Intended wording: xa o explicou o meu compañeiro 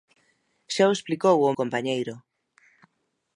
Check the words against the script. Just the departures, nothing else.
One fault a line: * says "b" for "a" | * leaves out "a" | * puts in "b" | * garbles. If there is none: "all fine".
* leaves out "meu"